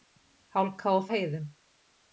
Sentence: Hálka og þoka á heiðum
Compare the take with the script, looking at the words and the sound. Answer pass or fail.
fail